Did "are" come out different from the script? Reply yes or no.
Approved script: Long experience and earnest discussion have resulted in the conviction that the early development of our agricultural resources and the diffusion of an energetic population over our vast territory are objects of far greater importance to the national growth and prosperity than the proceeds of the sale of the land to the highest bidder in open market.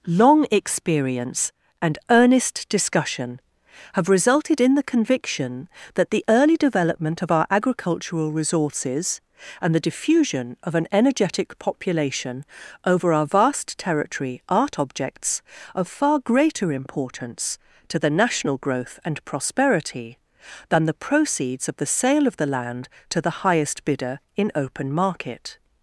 yes